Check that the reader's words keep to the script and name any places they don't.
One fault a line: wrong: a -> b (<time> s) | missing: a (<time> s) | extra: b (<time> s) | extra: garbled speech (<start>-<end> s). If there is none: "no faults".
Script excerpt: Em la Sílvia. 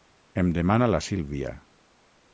extra: demana (0.6 s)